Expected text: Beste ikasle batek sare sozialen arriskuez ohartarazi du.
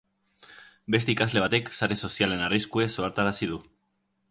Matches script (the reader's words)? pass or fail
pass